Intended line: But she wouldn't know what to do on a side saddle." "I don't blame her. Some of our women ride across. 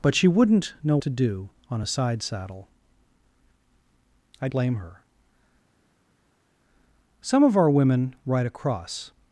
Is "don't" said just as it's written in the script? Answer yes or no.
no